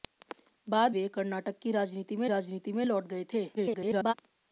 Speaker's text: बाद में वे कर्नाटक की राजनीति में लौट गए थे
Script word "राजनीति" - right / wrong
right